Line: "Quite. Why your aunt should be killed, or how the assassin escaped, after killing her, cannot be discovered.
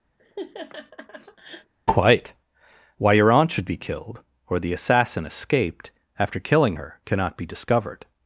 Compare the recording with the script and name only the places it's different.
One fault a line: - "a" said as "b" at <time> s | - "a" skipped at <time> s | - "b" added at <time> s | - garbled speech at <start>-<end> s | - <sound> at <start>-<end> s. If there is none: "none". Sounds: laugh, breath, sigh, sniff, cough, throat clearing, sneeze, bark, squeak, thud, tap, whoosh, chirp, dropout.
- laugh at 0.2-1.7 s
- "how" skipped at 4.6 s